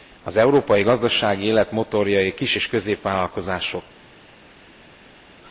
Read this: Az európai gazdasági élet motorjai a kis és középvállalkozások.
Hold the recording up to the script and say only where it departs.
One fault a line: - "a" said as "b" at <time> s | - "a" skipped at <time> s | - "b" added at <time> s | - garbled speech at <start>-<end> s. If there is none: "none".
none